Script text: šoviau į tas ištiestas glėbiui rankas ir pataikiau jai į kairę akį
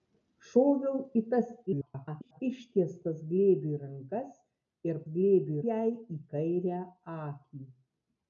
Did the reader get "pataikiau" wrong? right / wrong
wrong